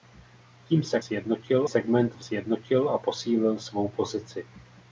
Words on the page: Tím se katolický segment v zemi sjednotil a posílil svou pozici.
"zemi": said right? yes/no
no